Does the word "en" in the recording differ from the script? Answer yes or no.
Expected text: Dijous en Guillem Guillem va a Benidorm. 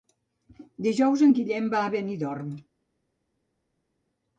no